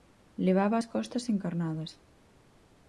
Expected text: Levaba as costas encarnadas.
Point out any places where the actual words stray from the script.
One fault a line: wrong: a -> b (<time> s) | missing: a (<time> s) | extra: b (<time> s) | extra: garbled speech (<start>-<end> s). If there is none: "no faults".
no faults